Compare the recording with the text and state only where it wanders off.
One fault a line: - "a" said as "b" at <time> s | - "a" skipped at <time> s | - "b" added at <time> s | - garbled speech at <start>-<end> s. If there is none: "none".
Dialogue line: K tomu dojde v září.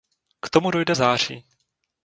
none